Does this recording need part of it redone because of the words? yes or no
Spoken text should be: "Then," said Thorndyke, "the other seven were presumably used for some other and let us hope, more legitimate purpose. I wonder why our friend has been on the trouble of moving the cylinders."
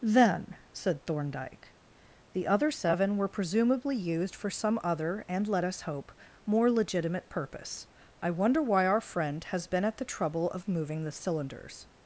yes